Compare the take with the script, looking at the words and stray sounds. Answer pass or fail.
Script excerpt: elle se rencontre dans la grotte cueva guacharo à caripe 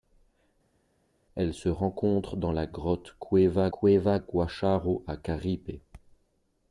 fail